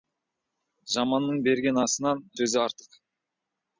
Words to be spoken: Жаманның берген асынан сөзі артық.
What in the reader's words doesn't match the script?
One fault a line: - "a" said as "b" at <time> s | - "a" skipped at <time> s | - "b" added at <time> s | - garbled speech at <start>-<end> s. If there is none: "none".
none